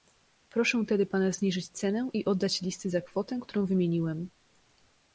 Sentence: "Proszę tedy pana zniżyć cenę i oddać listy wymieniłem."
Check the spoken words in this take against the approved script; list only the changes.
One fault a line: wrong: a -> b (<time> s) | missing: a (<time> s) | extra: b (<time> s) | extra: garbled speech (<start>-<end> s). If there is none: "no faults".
extra: za kwotę którą (2.9 s)